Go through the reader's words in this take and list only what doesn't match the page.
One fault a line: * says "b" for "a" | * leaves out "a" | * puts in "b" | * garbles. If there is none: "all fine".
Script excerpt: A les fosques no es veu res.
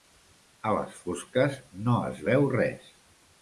all fine